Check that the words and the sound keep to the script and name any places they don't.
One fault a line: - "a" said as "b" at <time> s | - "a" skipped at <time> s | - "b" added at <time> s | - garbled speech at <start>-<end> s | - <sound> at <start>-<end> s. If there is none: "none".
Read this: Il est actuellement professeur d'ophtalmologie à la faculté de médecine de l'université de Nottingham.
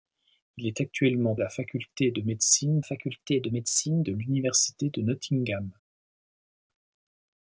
- "professeur d'ophtalmologie à la" said as "à la faculté de médecine" at 1.3 s